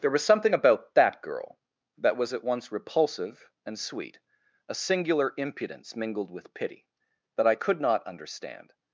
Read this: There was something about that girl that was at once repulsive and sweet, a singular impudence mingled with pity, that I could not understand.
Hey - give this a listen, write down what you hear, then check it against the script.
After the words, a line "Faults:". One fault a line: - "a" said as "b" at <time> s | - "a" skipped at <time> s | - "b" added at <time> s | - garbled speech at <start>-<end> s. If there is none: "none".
There was something about that girl that was at once repulsive and sweet, a singular impudence mingled with pity, that I could not understand.
Faults:
none